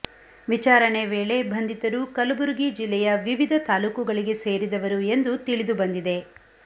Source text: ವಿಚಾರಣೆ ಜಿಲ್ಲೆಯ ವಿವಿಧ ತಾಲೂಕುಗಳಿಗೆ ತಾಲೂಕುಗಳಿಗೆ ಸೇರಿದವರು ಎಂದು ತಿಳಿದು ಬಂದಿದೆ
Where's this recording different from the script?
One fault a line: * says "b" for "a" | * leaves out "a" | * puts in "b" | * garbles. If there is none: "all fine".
* puts in "ವೇಳೆ ಬಂಧಿತರು ಕಲಬುರಗಿ"
* leaves out "ತಾಲೂಕುಗಳಿಗೆ"